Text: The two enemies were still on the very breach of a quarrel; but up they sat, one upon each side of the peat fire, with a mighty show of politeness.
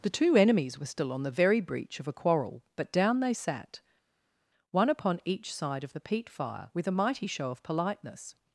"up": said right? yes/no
no